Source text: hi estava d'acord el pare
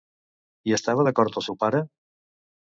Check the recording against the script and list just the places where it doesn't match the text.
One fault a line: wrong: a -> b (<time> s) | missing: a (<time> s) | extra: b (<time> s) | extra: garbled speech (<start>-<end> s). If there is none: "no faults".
extra: seu (1.5 s)